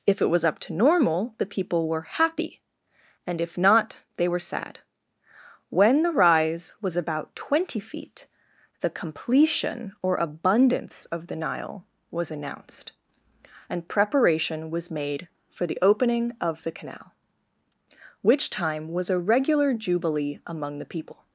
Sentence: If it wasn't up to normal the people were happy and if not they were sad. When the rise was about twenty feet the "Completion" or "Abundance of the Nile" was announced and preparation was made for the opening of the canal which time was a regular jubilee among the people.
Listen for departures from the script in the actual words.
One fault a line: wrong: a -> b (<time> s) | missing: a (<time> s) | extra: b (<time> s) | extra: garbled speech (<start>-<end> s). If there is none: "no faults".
wrong: wasn't -> was (0.3 s)